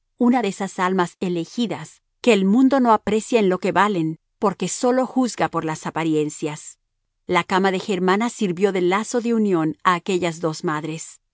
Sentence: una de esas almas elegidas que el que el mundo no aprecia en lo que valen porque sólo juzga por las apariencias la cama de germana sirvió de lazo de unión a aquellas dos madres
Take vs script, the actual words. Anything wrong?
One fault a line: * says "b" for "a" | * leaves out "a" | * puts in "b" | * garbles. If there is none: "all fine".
* leaves out "que el"